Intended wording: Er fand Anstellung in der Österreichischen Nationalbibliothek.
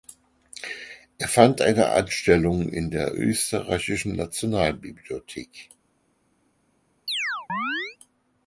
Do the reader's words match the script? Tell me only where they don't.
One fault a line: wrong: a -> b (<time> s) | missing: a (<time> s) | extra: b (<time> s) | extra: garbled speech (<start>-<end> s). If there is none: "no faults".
extra: eine (1.6 s)